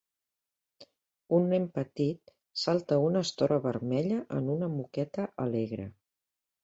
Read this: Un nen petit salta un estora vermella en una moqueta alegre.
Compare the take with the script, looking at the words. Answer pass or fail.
fail